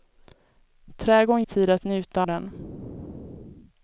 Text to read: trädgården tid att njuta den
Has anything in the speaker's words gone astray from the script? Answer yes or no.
no